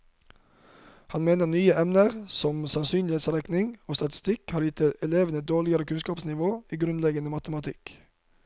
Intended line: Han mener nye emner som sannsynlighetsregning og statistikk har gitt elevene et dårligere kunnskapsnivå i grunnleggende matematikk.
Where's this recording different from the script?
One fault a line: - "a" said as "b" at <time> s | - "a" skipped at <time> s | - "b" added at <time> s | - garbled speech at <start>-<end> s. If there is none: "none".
none